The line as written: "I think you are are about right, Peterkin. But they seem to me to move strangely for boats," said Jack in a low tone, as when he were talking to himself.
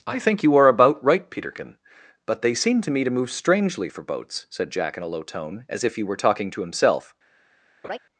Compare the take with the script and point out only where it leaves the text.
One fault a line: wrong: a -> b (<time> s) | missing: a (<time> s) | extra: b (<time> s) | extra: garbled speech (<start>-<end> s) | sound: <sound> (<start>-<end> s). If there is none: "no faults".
missing: are (0.7 s)
wrong: when -> if (5.8 s)
sound: laugh (7.8-8.0 s)